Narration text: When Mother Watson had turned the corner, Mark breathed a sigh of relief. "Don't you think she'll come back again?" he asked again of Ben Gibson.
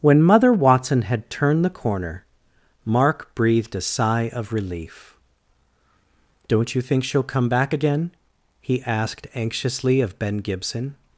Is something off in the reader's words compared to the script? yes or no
yes